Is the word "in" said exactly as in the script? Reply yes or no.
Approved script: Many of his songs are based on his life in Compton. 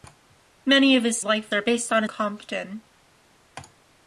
no